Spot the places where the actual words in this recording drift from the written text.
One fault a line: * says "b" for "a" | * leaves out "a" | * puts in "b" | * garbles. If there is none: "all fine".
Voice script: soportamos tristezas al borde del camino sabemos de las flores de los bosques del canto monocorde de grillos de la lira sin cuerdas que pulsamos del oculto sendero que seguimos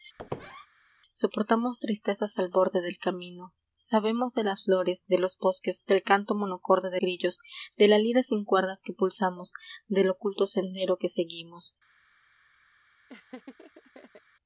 all fine